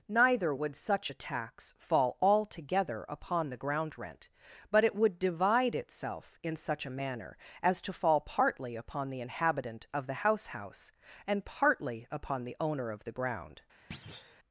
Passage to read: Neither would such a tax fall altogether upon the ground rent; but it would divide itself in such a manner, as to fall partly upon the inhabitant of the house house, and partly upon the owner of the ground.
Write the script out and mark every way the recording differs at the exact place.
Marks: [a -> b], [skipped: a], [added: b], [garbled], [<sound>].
Neither would such a tax fall altogether upon the ground rent; but it would divide itself in such a manner, as to fall partly upon the inhabitant of the house house, and partly upon the owner of the ground. [thud]